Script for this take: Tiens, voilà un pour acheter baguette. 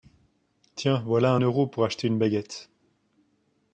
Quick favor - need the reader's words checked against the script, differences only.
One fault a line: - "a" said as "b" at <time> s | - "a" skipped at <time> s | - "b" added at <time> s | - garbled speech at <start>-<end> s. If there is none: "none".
- "euro" added at 1.4 s
- "une" added at 2.1 s